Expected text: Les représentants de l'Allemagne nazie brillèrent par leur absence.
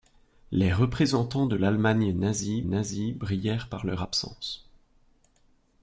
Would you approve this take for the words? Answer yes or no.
no